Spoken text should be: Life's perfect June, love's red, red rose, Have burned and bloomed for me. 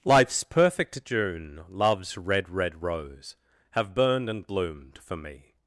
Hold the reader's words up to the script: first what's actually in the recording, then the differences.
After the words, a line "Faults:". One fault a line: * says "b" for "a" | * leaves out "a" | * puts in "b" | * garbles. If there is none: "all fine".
Life's perfect June, love's red, red rose, Have burned and bloomed for me.
Faults:
all fine